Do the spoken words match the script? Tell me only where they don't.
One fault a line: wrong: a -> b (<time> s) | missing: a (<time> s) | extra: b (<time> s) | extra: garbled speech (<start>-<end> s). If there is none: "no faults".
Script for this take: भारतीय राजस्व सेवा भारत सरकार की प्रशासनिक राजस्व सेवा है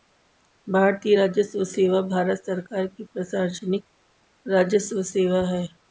no faults